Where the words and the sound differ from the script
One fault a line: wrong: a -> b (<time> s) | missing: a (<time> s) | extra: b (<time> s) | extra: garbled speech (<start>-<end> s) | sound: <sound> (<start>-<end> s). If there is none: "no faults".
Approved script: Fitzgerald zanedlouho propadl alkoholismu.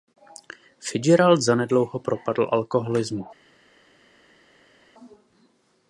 no faults